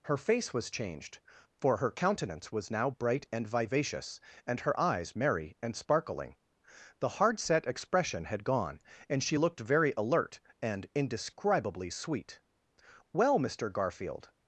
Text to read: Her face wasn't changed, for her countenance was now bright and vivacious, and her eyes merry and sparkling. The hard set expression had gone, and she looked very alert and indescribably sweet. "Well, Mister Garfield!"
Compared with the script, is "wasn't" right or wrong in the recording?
wrong